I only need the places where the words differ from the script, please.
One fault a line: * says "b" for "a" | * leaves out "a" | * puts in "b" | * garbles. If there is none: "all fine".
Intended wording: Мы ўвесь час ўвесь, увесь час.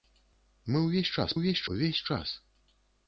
all fine